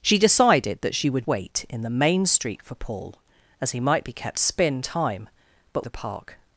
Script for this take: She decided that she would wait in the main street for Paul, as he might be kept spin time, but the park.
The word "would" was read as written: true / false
true